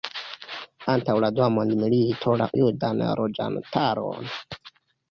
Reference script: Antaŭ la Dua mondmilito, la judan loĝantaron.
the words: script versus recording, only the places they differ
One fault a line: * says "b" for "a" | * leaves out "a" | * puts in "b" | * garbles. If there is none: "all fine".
all fine